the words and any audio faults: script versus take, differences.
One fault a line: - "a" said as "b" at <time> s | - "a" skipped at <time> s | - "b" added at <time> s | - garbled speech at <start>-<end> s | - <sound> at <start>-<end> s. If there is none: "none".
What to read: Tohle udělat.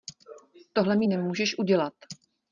- "mi nemůžeš" added at 0.9 s